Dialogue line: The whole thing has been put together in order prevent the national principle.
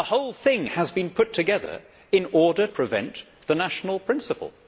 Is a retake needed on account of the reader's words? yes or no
no